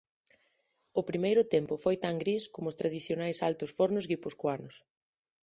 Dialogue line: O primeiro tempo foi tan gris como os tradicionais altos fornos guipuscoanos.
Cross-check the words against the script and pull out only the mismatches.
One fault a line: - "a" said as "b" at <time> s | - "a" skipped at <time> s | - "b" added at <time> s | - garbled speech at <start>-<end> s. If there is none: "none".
none